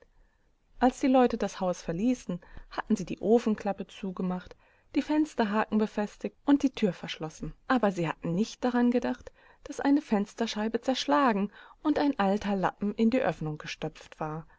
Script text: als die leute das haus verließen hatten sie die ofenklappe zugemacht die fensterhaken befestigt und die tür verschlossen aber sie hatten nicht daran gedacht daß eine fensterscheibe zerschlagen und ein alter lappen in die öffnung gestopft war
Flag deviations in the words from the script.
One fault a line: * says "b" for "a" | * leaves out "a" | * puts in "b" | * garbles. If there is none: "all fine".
all fine